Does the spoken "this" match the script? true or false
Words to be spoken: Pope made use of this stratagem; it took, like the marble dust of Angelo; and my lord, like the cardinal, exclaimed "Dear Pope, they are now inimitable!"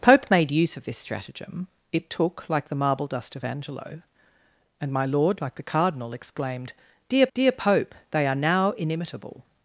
true